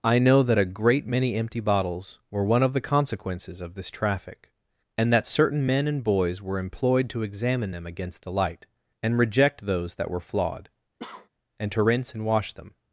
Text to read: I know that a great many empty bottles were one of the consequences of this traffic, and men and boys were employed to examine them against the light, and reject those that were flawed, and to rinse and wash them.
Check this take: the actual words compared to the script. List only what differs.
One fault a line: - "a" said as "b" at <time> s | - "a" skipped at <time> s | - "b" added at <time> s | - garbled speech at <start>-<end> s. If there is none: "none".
- "that certain" added at 5.1 s